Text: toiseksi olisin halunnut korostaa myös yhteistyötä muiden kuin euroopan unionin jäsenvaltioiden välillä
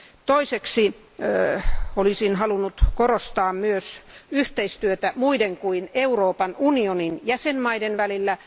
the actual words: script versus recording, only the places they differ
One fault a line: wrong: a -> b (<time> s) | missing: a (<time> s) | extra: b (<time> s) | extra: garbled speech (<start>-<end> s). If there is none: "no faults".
no faults